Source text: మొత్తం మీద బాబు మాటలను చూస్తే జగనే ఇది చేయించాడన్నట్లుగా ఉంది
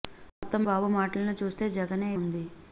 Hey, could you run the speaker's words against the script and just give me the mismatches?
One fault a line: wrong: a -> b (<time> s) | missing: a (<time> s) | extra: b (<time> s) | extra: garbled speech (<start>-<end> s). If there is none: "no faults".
missing: మీద (0.6 s)
missing: ఇది చేయించాడన్నట్లుగా (2.1 s)